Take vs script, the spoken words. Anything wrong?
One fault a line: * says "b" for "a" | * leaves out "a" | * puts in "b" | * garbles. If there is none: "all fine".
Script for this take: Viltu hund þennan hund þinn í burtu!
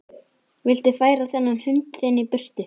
* says "færa" for "hund"